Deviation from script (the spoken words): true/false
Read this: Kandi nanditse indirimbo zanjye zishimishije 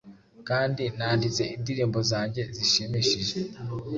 false